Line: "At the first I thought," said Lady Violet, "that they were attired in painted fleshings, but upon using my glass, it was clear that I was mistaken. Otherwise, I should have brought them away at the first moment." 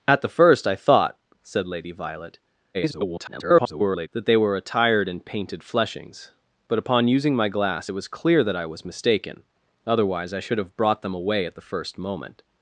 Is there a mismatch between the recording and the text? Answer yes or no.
yes